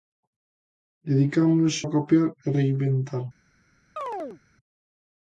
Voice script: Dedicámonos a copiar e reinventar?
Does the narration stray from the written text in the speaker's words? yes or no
no